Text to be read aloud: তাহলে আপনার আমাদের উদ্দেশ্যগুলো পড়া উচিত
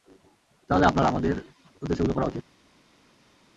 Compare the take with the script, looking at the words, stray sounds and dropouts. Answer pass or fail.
pass